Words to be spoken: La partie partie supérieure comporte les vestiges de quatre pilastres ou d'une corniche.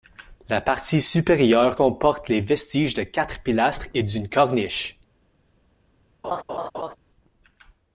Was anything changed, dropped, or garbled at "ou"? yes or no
yes